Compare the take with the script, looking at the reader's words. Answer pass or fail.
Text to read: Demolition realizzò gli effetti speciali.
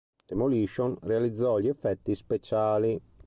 pass